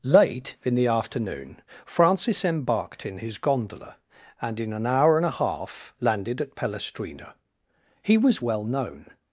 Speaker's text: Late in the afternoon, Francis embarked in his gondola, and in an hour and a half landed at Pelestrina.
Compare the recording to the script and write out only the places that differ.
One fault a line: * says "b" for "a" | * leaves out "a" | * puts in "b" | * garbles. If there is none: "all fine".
* puts in "He was well known"